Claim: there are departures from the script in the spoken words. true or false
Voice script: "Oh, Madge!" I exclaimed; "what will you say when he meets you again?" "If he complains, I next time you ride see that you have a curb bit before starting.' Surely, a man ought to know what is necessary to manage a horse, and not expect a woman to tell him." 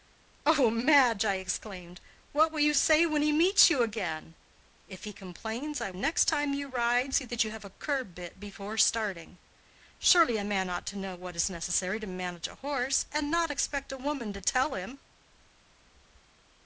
false